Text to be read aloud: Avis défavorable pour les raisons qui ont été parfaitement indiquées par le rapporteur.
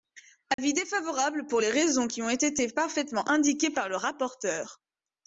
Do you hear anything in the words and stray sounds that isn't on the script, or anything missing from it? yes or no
yes